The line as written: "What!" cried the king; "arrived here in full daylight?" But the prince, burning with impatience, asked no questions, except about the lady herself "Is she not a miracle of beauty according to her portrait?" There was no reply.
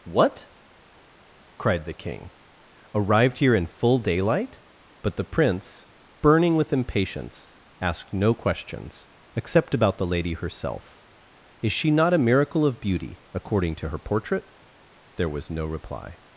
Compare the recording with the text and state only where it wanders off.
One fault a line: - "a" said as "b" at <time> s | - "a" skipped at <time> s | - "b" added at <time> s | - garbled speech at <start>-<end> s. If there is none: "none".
none